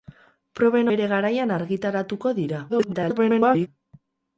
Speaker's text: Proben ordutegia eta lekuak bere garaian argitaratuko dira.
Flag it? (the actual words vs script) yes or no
yes